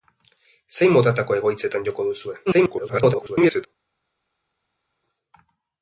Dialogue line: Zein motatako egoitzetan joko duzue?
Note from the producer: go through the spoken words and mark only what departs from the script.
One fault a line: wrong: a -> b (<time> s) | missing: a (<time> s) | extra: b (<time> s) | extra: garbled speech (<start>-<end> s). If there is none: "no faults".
extra: garbled speech (2.5-3.7 s)